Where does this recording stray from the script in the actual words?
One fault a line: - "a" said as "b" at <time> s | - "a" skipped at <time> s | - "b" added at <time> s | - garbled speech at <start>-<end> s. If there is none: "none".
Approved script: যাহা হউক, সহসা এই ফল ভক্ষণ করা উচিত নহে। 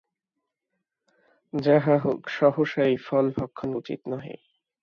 - "করা" skipped at 3.7 s